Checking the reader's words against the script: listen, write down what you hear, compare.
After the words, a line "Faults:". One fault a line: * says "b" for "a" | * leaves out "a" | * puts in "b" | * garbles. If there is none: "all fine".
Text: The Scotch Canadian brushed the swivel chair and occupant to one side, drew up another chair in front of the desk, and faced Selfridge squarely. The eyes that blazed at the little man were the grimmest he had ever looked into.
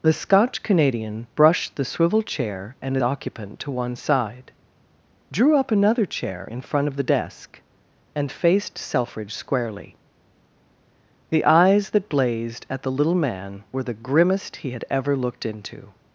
The Scotch Canadian brushed the swivel chair and occupant to one side, drew up another chair in front of the desk, and faced Selfridge squarely. The eyes that blazed at the little man were the grimmest he had ever looked into.
Faults:
all fine